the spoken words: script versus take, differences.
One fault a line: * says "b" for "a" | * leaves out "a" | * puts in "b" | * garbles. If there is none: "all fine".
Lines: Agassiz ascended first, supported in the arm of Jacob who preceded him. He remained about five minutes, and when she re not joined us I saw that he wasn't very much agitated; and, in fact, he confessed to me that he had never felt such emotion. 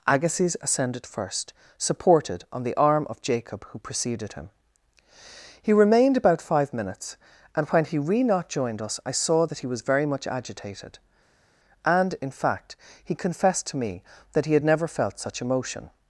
* says "on" for "in"
* says "he" for "she"
* says "was" for "wasn't"